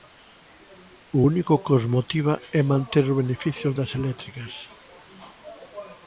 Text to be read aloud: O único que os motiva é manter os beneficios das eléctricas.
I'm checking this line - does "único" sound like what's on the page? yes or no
yes